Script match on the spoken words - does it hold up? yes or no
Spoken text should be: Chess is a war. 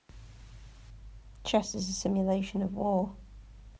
no